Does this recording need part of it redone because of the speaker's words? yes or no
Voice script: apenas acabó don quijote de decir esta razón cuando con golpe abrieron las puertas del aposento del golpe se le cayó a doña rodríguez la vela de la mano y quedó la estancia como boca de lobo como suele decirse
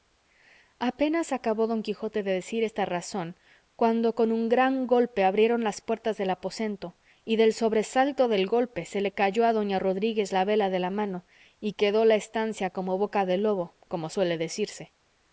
yes